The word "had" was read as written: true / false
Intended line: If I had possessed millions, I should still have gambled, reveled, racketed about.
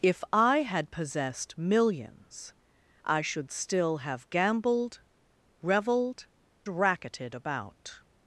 true